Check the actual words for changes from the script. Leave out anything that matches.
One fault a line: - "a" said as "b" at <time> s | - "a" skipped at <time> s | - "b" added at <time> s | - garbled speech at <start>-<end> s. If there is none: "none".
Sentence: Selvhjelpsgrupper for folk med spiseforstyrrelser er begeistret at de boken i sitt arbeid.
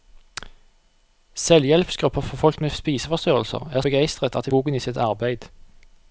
none